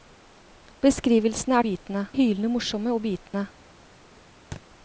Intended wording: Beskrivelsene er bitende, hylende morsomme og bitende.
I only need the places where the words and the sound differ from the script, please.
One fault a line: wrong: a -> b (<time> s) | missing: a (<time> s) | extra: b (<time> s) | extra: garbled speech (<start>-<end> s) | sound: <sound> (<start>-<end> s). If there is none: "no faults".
sound: dropout (3.3-3.3 s)
sound: thud (4.5-4.6 s)